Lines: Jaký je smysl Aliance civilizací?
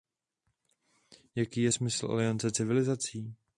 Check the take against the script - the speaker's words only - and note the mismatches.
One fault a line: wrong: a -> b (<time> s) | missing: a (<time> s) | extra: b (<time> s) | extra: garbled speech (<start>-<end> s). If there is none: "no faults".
no faults